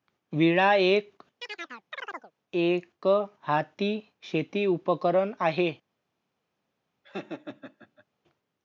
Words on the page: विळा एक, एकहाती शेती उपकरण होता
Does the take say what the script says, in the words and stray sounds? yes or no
no